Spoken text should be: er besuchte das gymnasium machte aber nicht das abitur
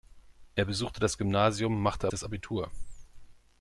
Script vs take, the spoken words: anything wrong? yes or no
yes